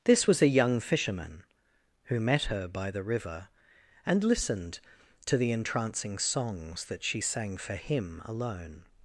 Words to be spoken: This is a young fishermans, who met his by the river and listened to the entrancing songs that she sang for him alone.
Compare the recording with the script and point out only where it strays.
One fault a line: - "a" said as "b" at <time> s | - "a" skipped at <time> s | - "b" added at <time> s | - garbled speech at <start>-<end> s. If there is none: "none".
- "is" said as "was" at 0.3 s
- "fishermans" said as "fisherman" at 0.8 s
- "his" said as "her" at 2.4 s